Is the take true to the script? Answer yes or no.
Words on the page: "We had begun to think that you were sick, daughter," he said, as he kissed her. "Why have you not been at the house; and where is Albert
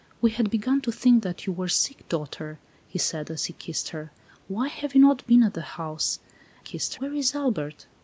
no